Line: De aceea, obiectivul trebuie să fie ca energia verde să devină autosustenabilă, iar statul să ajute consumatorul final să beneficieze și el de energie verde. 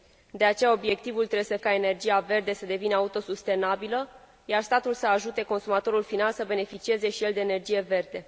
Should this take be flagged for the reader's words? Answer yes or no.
yes